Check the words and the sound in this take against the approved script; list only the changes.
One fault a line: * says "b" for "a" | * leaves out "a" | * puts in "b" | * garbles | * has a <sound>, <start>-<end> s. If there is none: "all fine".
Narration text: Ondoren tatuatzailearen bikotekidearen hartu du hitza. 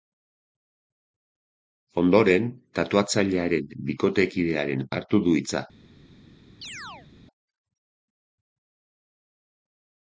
* has a chirp, 6.6-7.1 s